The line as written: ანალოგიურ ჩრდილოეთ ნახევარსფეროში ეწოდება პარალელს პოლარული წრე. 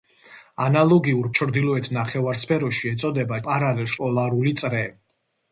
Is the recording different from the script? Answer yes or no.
no